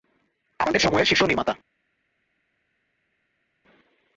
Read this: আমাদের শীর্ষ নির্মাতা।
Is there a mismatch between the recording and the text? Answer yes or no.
yes